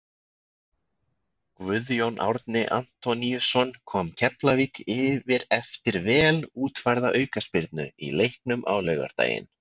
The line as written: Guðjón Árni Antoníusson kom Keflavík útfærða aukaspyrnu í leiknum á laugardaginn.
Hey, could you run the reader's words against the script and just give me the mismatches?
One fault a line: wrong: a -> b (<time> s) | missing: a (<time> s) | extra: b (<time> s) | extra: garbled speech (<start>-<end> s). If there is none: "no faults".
extra: yfir eftir vel (5.0 s)